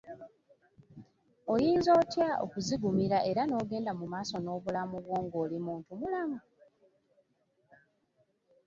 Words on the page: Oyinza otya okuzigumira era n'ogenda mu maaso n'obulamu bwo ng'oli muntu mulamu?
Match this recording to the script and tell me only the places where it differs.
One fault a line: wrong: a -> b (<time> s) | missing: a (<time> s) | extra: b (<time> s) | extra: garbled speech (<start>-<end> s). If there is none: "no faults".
no faults